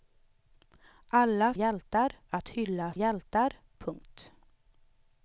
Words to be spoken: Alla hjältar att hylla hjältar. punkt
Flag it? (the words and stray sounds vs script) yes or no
no